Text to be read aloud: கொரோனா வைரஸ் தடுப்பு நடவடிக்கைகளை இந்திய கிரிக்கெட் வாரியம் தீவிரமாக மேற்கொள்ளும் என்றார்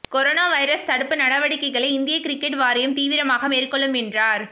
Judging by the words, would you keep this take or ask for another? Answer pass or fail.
pass